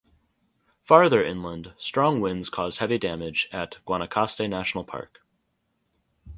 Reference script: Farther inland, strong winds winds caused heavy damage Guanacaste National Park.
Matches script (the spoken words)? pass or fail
fail